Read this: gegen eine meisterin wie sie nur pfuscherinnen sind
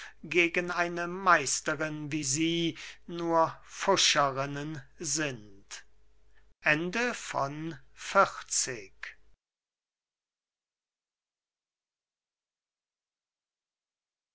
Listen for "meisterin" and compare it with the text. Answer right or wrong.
right